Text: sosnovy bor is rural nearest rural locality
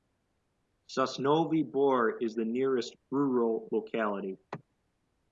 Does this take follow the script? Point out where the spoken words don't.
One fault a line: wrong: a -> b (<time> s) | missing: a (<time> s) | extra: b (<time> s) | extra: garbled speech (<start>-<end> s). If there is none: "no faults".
wrong: rural -> the (2.3 s)